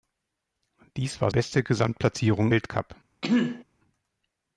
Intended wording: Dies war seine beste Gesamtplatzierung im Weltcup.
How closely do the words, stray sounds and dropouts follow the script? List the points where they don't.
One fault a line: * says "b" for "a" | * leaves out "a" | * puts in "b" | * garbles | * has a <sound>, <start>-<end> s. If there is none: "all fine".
* leaves out "seine"
* leaves out "im"
* has a throat clearing, 3.2-3.6 s